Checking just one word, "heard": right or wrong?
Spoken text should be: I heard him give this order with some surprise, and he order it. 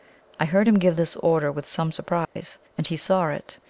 right